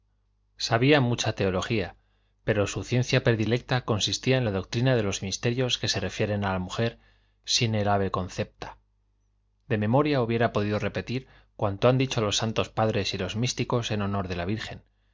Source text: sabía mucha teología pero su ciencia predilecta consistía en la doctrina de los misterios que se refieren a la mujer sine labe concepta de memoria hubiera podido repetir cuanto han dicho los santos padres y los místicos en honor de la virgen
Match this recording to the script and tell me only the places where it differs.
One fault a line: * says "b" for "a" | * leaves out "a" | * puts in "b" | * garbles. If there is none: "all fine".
all fine